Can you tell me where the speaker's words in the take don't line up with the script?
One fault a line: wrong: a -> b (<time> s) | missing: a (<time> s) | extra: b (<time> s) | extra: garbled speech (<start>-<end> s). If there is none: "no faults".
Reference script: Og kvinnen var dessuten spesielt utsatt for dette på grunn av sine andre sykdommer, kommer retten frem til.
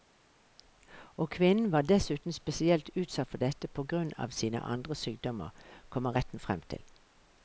no faults